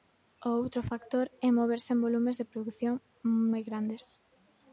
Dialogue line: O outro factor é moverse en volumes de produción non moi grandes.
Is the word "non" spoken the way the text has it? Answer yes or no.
no